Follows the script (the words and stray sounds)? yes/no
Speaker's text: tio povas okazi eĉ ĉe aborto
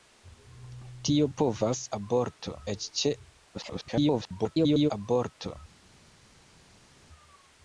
no